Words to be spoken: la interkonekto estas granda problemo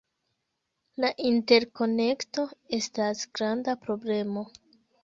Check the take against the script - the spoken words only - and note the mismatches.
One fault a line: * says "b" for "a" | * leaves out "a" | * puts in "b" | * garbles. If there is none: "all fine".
all fine